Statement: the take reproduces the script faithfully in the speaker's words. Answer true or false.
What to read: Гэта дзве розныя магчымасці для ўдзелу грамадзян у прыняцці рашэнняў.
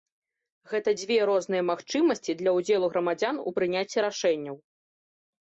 true